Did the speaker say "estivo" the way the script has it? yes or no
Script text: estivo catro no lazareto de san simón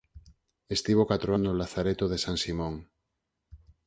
yes